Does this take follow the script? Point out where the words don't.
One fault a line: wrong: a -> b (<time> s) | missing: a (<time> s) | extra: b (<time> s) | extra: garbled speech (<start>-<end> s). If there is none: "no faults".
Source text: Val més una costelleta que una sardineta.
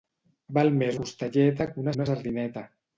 missing: una (1.0 s)
extra: una (2.0 s)